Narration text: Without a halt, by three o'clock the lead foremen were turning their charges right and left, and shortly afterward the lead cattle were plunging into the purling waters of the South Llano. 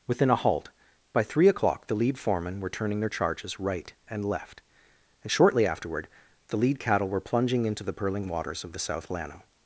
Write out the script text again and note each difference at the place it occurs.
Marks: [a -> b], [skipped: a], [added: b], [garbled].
[Without -> Within] a halt, by three o'clock the lead foremen were turning their charges right and left, and shortly afterward the lead cattle were plunging into the purling waters of the South Llano.